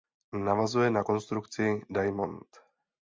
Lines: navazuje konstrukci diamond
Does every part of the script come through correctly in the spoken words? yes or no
no